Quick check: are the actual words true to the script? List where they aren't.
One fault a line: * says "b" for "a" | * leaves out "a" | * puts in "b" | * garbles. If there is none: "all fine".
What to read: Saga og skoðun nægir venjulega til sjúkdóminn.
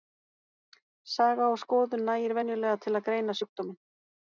* puts in "að greina"